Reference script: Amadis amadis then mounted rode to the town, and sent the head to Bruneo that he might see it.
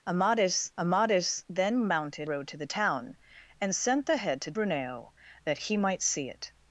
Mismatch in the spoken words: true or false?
false